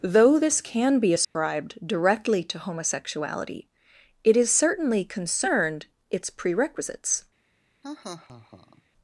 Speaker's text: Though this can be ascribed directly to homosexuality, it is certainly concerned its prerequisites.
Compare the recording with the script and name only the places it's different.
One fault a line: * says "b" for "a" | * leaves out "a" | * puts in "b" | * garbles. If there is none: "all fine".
all fine